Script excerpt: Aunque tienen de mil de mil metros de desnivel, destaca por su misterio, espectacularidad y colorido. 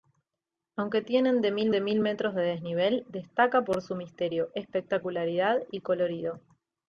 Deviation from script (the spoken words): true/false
false